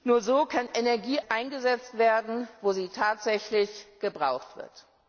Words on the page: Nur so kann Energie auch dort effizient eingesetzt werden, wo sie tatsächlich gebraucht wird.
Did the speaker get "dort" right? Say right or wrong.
wrong